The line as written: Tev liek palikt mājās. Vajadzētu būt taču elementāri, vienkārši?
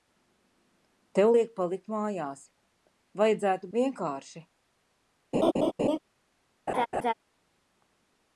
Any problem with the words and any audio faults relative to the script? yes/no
yes